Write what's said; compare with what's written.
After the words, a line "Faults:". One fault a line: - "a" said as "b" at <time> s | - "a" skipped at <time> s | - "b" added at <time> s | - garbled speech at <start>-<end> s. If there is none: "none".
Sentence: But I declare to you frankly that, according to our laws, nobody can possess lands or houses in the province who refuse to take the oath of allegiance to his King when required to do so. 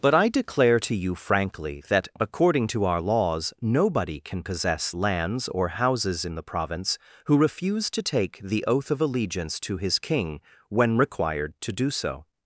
But I declare to you frankly that, according to our laws, nobody can possess lands or houses in the province who refuse to take the oath of allegiance to his King when required to do so.
Faults:
none